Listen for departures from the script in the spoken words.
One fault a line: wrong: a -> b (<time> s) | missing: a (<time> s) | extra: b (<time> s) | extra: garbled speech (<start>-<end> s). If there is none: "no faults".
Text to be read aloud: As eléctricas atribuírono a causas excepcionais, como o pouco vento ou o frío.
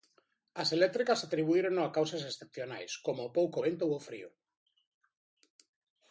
no faults